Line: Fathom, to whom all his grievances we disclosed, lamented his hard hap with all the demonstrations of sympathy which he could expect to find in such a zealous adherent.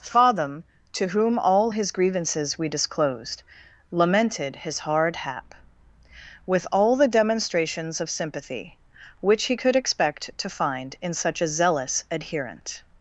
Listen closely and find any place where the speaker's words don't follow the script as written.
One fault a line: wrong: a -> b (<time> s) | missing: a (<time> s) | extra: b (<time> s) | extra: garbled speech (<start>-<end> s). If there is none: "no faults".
no faults